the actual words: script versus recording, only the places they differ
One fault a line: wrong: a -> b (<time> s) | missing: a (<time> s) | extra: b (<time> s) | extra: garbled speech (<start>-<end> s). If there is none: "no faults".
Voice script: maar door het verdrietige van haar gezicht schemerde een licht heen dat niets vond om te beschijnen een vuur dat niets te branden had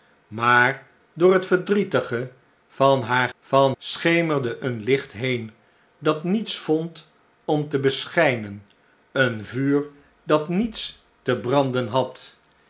wrong: gezicht -> van (3.4 s)